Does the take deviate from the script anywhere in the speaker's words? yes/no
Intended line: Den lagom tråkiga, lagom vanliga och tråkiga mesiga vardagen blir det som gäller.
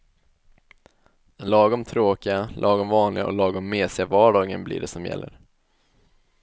yes